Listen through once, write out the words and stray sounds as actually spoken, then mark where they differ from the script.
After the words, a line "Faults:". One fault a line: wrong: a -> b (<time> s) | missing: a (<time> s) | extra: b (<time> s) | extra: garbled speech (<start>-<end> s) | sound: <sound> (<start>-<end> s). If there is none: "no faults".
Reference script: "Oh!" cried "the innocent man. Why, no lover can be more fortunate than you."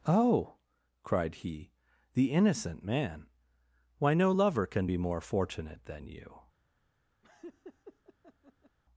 "Oh!" cried he, "the innocent man. Why, no lover can be more fortunate than you."
Faults:
extra: he (1.4 s)
sound: laugh (7.2-8.8 s)